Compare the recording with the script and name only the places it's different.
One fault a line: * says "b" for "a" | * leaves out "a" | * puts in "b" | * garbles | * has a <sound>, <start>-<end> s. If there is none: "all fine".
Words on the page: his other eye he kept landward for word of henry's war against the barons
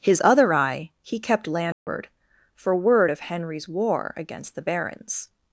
* has a dropout, 1.7-1.9 s